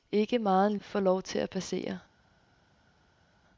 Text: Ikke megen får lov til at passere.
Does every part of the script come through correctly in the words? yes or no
yes